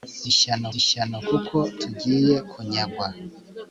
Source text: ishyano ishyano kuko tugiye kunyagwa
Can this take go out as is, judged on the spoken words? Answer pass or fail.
pass